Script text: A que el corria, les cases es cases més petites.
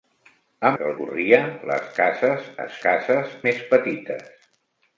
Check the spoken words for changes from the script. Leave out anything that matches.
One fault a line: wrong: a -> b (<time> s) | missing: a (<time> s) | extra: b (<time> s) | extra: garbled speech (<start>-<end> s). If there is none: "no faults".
no faults